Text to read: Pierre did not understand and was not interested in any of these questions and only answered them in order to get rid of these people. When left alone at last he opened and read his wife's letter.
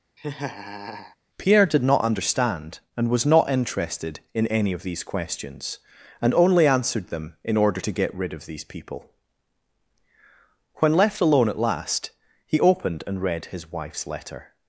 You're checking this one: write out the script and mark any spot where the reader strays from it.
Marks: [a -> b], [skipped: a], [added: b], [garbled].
Pierre did not understand and was not interested in any of these questions and only answered them in order to get rid of these people. When left alone at last he opened and read his wife's letter.